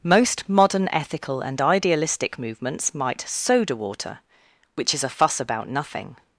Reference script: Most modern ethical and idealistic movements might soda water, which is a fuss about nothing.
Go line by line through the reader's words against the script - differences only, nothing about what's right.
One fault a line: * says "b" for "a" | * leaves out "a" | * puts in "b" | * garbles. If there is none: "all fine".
all fine